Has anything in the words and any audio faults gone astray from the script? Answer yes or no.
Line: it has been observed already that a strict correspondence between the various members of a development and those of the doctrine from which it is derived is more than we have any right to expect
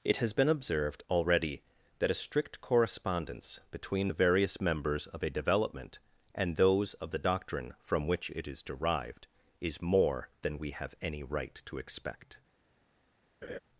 yes